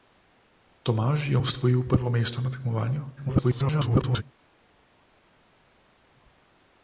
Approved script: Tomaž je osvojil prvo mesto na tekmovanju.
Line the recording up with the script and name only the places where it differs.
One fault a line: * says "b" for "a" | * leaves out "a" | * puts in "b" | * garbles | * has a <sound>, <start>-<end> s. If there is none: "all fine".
* garbles